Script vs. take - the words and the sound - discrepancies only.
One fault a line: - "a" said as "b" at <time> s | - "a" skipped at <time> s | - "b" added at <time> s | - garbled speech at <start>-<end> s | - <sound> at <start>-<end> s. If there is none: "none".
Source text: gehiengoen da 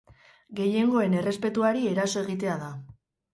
- "errespetuari eraso egitea" added at 1.2 s